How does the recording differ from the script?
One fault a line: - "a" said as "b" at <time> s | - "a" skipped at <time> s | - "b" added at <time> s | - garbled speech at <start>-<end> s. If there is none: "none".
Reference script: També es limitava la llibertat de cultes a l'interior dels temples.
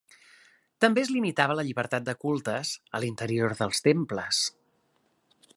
none